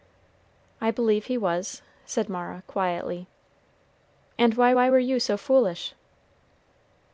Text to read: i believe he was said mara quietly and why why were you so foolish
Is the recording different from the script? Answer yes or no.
no